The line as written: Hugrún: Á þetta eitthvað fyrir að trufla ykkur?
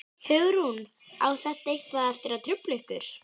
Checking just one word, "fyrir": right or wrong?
wrong